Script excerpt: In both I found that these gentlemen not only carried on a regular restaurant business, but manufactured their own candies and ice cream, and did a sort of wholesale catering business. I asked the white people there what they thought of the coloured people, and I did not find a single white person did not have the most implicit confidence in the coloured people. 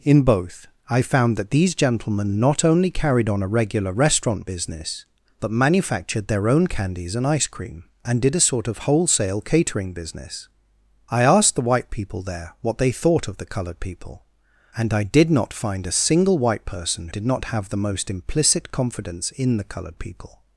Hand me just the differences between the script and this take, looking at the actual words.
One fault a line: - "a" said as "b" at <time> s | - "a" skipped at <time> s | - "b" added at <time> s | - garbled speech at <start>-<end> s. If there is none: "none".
none